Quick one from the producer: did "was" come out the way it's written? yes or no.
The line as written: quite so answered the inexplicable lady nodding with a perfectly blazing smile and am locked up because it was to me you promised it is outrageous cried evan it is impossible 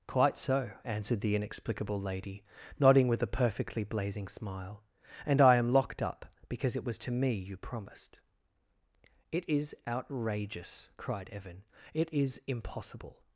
yes